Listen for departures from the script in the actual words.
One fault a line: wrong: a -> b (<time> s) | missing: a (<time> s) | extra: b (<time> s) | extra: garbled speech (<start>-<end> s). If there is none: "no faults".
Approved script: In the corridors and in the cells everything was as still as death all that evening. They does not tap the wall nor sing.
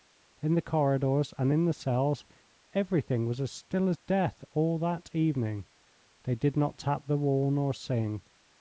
wrong: does -> did (6.4 s)